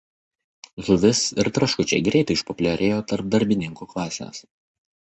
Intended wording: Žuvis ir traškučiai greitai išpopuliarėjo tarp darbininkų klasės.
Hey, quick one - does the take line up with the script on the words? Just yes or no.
yes